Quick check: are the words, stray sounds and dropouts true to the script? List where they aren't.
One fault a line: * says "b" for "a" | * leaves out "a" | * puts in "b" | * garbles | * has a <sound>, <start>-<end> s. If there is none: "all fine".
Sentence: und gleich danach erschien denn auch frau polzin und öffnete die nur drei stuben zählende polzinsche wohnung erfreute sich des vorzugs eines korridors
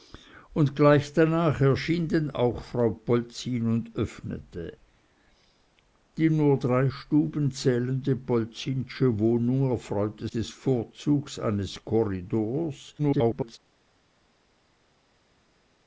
* leaves out "sich"
* garbles